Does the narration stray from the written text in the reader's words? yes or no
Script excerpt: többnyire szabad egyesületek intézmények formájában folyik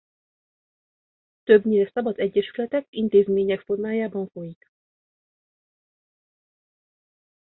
no